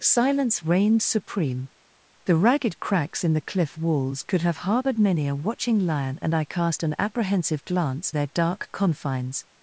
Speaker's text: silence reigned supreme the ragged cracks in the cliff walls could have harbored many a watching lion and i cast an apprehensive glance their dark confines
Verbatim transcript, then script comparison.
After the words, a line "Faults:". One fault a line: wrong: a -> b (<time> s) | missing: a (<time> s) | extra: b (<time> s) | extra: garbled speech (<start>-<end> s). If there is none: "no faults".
silence reigned supreme the ragged cracks in the cliff walls could have harbored many a watching lion and i cast an apprehensive glance their dark confines
Faults:
no faults